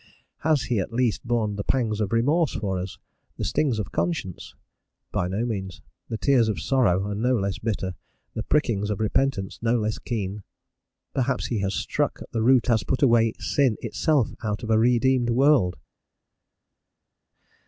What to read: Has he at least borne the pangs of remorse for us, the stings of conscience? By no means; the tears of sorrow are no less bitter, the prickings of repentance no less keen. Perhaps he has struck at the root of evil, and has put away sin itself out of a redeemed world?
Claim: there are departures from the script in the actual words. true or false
true